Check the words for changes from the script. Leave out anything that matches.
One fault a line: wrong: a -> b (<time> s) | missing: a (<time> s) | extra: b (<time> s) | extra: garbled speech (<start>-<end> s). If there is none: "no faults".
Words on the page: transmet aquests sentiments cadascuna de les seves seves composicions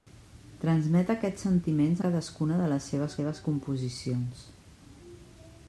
no faults